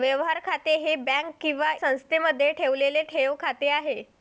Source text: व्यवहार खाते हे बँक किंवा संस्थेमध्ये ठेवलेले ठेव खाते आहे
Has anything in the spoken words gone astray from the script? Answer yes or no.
no